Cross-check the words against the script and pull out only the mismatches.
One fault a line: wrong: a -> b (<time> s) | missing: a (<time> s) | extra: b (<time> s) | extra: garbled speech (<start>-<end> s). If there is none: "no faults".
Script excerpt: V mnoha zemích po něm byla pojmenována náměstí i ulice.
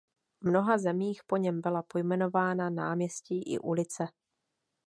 no faults